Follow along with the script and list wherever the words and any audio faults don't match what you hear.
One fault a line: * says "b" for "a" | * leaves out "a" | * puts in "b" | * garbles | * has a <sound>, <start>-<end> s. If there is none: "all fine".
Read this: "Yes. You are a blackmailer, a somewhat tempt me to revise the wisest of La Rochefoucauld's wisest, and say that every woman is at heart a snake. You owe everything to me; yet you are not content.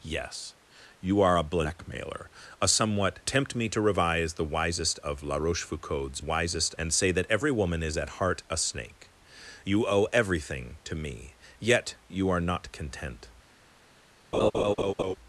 * has a laugh, 14.3-15.2 s